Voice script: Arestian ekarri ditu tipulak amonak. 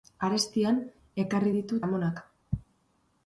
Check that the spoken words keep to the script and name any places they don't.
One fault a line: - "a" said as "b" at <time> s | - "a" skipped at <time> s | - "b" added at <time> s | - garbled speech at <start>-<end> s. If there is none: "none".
- "tipulak" skipped at 1.8 s